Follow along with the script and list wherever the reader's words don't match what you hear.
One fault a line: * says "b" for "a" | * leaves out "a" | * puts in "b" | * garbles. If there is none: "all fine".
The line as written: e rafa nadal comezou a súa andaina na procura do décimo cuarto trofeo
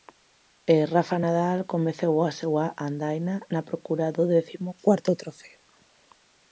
all fine